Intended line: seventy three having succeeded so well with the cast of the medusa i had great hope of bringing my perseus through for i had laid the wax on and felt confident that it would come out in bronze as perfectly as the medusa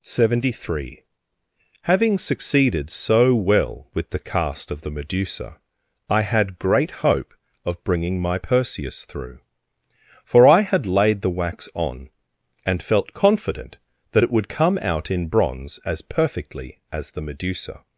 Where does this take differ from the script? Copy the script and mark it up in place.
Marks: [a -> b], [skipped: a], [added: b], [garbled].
seventy three having succeeded so well with the cast of the medusa i had great hope of bringing my perseus through for i had laid the wax on and felt confident that it would come out in bronze as perfectly as the medusa